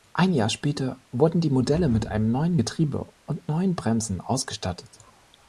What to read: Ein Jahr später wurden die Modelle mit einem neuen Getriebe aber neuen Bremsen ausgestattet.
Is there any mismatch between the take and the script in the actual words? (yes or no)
yes